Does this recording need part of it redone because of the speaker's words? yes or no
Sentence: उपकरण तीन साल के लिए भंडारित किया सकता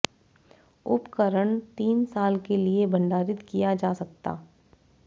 yes